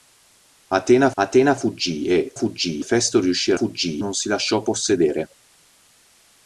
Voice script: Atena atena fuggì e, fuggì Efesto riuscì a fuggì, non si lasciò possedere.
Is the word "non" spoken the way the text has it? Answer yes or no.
yes